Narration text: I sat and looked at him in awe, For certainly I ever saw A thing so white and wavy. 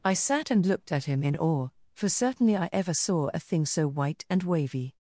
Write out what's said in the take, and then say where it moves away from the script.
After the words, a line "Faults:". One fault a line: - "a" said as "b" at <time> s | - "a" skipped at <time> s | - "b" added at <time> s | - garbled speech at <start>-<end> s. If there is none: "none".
I sat and looked at him in awe, For certainly I ever saw A thing so white and wavy.
Faults:
none